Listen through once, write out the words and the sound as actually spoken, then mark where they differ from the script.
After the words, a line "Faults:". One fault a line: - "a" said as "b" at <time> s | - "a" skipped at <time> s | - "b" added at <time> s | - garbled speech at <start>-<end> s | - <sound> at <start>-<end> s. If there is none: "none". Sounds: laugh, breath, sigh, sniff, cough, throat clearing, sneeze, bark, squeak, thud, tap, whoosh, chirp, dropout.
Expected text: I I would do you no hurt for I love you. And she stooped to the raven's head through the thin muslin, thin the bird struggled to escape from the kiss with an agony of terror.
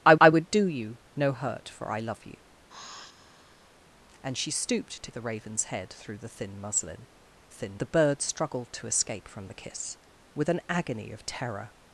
I I would do you no hurt for I love you. And she stooped to the raven's head through the thin muslin, thin the bird struggled to escape from the kiss with an agony of terror.
Faults:
- sigh at 2.7-3.8 s